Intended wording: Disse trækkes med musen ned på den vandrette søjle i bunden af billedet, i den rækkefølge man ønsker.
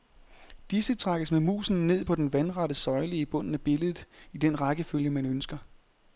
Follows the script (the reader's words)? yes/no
yes